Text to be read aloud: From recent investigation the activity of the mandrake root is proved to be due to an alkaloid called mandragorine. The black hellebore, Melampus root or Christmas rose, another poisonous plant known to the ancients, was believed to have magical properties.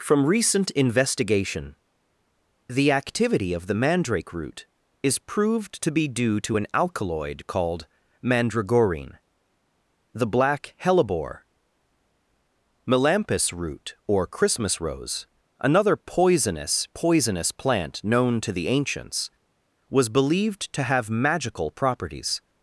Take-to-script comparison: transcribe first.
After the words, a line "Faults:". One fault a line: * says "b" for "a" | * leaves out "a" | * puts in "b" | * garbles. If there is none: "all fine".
From recent investigation the activity of the mandrake root is proved to be due to an alkaloid called mandragorine. The black hellebore, Melampus root or Christmas rose, another poisonous poisonous plant known to the ancients, was believed to have magical properties.
Faults:
* puts in "poisonous"